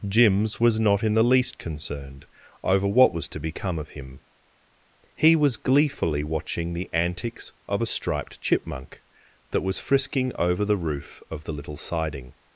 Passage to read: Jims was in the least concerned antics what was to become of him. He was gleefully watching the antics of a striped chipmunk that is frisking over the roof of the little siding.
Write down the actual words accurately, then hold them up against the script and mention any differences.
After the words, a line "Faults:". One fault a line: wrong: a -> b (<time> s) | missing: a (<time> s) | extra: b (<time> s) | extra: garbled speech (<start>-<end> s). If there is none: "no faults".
Jims was not in the least concerned over what was to become of him. He was gleefully watching the antics of a striped chipmunk that was frisking over the roof of the little siding.
Faults:
extra: not (0.8 s)
wrong: antics -> over (2.6 s)
wrong: is -> was (9.6 s)